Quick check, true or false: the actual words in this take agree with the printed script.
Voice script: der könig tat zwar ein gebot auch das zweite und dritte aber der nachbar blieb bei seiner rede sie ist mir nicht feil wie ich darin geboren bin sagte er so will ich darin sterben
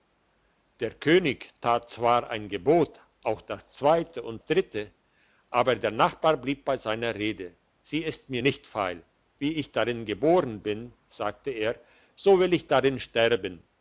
true